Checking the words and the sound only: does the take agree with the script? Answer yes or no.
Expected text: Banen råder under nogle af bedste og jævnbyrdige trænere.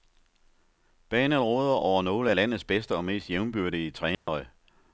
no